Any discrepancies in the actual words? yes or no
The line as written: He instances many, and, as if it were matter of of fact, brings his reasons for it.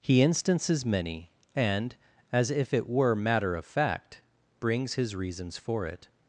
yes